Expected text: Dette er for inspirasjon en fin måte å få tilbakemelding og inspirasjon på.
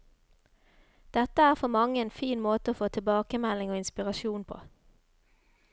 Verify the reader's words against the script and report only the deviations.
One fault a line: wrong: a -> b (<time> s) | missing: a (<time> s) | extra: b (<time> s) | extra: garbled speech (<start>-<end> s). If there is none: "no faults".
wrong: inspirasjon -> mange (1.7 s)